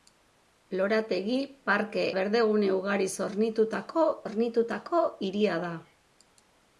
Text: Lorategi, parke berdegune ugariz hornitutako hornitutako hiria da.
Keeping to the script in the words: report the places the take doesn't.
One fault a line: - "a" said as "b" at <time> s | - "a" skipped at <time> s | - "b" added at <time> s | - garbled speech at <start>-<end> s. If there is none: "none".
none